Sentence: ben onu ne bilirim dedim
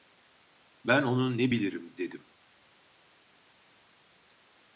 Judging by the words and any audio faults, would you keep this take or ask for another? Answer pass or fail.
pass